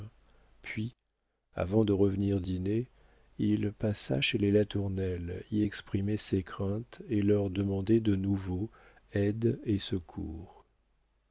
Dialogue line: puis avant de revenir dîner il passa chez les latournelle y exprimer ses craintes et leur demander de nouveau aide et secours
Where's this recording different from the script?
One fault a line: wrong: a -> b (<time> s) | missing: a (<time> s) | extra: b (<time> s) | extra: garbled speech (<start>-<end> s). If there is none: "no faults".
no faults